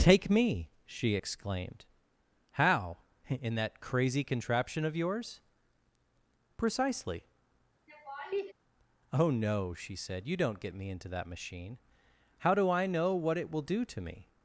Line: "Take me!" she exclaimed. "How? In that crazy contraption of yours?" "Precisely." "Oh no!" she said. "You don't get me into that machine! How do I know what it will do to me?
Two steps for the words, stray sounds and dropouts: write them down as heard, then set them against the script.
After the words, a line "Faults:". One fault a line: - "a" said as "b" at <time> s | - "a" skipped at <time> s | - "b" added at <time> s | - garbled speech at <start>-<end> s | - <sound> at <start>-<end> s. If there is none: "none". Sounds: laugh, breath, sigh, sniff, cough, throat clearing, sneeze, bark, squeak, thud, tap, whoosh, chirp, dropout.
"Take me!" she exclaimed. "How? In that crazy contraption of yours?" "Precisely." "Oh no!" she said. "You don't get me into that machine! How do I know what it will do to me?
Faults:
- laugh at 7.9-8.5 s